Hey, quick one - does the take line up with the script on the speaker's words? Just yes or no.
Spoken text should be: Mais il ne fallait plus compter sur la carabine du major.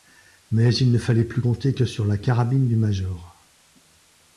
no